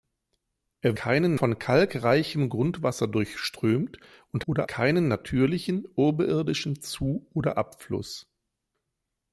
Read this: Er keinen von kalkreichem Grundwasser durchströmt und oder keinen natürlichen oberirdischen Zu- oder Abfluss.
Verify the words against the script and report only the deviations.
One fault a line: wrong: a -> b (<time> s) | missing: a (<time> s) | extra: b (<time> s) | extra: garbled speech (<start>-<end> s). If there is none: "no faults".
no faults